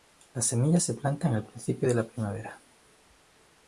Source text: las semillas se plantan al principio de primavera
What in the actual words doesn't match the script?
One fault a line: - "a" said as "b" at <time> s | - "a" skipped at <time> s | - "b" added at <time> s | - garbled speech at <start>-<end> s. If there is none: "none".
- "la" added at 1.9 s